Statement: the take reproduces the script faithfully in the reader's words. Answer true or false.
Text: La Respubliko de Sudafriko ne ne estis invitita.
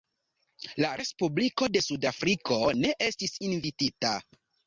false